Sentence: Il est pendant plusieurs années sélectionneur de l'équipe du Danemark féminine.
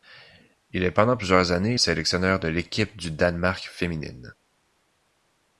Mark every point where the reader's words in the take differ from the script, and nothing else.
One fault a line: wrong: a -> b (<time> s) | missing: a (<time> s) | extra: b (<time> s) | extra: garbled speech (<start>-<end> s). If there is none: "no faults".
no faults